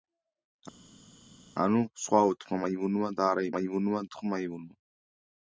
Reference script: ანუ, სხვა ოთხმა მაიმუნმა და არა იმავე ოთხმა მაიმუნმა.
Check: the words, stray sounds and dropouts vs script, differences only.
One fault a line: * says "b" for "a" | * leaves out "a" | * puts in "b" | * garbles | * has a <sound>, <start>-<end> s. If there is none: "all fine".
* says "მაიმუნმა" for "იმავე"